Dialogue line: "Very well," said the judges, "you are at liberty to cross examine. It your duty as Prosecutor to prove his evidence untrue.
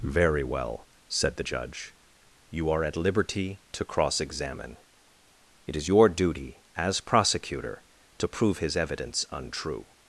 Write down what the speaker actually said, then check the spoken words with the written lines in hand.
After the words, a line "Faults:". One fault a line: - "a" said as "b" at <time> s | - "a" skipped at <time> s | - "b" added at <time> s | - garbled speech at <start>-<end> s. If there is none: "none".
"Very well," said the judge, "you are at liberty to cross examine. It is your duty as Prosecutor to prove his evidence untrue.
Faults:
- "judges" said as "judge" at 1.4 s
- "is" added at 5.7 s